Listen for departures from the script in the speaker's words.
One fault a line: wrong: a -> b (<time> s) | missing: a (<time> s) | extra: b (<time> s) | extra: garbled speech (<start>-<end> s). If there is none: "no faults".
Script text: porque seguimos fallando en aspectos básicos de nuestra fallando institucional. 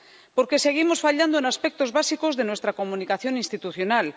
wrong: fallando -> comunicación (2.8 s)